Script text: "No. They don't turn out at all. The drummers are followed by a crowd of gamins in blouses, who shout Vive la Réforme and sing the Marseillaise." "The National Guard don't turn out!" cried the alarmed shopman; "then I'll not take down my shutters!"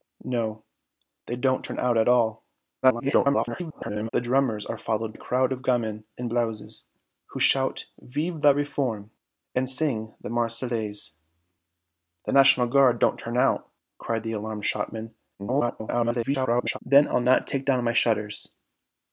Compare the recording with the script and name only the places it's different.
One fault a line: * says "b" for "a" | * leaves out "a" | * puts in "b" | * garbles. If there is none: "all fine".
* garbles
* leaves out "by"
* garbles